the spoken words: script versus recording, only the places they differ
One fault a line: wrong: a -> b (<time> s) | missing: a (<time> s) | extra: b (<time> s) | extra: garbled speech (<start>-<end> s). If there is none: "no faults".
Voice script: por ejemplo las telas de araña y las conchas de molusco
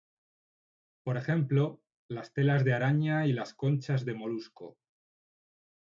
no faults